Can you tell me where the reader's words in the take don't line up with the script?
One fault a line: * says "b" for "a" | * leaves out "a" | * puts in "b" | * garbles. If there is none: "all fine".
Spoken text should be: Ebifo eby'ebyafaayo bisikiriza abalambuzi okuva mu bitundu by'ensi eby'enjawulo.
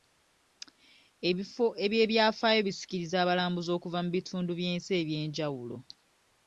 all fine